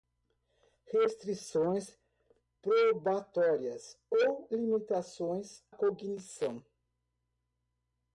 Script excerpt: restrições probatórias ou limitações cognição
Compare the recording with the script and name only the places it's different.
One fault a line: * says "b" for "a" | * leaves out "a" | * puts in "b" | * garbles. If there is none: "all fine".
all fine